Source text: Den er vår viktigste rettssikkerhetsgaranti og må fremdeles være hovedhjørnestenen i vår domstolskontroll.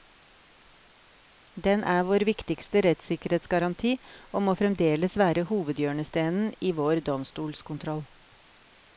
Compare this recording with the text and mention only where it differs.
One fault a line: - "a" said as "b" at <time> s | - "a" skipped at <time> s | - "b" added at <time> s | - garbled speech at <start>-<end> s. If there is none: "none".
none